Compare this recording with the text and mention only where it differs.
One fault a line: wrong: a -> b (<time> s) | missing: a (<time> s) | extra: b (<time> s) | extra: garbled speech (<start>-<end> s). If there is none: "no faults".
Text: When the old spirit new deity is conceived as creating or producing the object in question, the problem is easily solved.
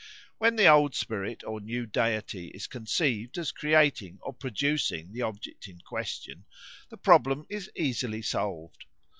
extra: or (1.4 s)